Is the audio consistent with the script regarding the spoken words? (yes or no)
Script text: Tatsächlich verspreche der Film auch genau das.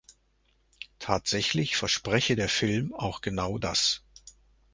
yes